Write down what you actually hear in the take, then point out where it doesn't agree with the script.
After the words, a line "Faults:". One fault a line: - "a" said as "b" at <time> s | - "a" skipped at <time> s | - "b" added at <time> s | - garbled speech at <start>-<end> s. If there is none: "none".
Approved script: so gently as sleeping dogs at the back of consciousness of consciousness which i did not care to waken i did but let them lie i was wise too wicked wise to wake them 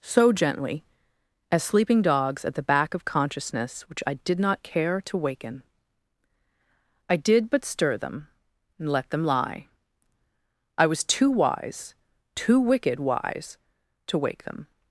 so gently as sleeping dogs at the back of consciousness which i did not care to waken i did but stir them and let them lie i was too wise too wicked wise to wake them
Faults:
- "of consciousness" skipped at 3.8 s
- "stir them and" added at 7.7 s
- "too" added at 11.0 s